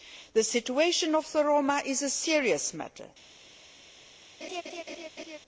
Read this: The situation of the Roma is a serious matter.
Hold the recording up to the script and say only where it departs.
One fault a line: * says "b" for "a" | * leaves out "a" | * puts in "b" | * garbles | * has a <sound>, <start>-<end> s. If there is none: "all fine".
* has a laugh, 4.4-5.4 s